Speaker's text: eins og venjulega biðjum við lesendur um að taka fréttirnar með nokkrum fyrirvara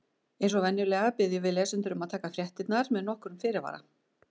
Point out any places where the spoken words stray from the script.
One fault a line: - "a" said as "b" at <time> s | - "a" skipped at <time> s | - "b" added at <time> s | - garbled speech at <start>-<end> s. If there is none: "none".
none